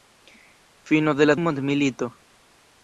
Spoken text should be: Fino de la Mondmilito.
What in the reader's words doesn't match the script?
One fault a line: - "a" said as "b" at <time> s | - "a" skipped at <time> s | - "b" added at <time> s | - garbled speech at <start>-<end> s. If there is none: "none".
none